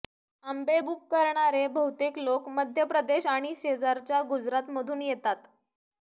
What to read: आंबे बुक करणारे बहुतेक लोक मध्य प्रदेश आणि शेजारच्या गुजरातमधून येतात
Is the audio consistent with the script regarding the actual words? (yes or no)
yes